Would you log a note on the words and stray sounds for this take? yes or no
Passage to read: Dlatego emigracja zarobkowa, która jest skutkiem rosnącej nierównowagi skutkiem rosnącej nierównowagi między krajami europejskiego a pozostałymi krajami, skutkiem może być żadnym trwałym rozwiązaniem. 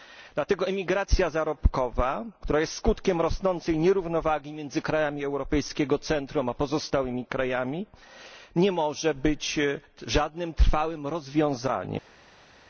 yes